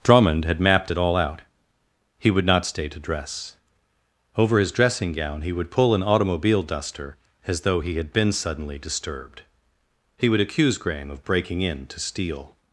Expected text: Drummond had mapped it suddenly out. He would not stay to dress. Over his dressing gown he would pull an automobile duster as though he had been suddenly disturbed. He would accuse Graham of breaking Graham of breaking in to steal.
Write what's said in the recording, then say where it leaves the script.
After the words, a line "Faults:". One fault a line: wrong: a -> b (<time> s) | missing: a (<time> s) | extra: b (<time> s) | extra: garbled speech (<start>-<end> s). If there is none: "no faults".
Drummond had mapped it all out. He would not stay to dress. Over his dressing gown he would pull an automobile duster as though he had been suddenly disturbed. He would accuse Graham of breaking in to steal.
Faults:
wrong: suddenly -> all (1.0 s)
missing: Graham of breaking (11.6 s)